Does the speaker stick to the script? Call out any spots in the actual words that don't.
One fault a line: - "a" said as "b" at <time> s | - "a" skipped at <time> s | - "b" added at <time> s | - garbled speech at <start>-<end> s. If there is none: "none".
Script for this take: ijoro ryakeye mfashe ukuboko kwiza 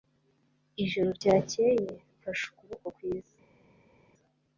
none